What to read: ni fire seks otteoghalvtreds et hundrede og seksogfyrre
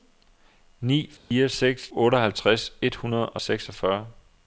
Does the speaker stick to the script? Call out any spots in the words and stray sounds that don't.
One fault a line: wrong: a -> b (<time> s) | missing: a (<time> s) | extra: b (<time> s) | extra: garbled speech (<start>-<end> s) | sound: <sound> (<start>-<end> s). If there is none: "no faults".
sound: dropout (1.2-1.3 s)